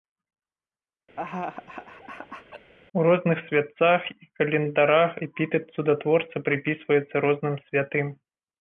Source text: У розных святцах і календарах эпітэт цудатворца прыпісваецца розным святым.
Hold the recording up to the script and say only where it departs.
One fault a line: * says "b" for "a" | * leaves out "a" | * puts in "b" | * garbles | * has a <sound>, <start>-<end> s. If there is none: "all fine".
* has a laugh, 1.2-2.7 s